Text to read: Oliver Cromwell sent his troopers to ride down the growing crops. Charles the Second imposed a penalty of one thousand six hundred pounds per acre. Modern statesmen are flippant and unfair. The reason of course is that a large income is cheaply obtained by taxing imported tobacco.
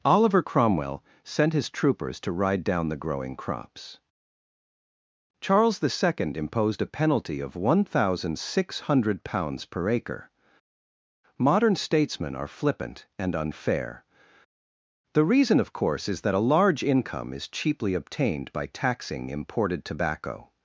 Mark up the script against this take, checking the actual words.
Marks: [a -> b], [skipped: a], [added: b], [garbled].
Oliver Cromwell sent his troopers to ride down the growing crops. Charles the Second imposed a penalty of one thousand six hundred pounds per acre. Modern statesmen are flippant and unfair. The reason of course is that a large income is cheaply obtained by taxing imported tobacco.